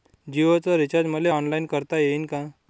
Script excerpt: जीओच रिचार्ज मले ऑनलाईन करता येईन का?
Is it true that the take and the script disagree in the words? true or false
false